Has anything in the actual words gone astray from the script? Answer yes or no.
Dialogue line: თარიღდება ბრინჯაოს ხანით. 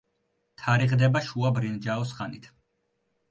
yes